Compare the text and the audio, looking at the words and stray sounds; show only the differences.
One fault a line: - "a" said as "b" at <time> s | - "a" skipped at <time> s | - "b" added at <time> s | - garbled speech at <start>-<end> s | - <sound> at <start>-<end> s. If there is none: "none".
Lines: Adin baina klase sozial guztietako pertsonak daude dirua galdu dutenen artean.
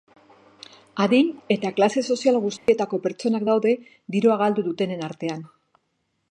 - "baina" said as "eta" at 1.6 s
- dropout at 2.6-2.7 s